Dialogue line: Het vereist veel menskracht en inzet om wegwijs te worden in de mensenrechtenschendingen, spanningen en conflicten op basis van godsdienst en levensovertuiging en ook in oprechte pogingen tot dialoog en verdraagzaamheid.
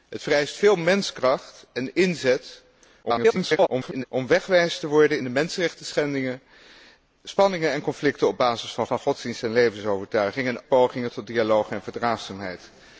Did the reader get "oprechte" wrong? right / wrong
wrong